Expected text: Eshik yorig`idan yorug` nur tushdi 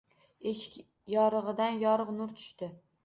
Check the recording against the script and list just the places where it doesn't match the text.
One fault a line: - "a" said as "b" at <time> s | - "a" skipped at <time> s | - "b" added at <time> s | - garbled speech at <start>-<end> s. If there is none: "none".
none